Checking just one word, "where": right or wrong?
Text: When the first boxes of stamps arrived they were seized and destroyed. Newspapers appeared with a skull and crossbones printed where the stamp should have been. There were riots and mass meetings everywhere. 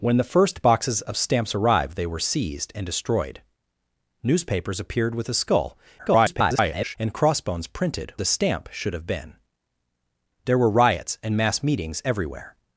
wrong